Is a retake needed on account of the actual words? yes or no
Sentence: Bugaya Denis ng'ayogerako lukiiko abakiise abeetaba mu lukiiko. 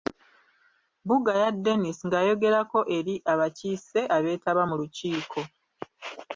yes